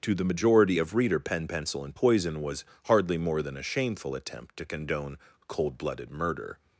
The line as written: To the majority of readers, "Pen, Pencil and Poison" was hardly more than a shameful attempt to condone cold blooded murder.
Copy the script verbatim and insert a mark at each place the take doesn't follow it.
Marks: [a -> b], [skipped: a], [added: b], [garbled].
To the majority of [readers, -> reader] "Pen, Pencil and Poison" was hardly more than a shameful attempt to condone cold blooded murder.